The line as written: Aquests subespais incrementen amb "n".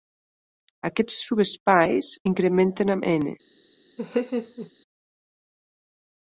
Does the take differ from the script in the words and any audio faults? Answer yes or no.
yes